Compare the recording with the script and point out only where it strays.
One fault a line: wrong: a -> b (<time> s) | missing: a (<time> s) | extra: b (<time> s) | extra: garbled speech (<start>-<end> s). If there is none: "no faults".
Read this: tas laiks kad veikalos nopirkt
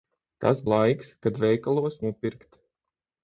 no faults